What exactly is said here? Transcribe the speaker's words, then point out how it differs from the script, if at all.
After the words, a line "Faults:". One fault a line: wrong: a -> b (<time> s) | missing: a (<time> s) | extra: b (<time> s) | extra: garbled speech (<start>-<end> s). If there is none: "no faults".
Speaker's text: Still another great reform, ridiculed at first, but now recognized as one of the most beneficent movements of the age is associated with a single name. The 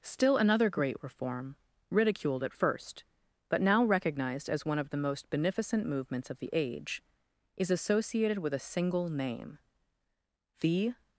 Still another great reform, ridiculed at first, but now recognized as one of the most beneficent movements of the age is associated with a single name. The
Faults:
no faults